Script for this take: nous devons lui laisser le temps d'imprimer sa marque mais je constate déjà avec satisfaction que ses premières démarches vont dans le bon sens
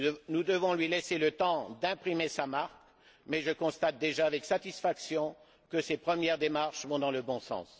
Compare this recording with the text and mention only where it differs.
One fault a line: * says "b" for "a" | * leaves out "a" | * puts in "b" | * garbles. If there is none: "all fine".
all fine